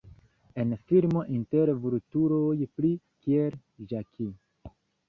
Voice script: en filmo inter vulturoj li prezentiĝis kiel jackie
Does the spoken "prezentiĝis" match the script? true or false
false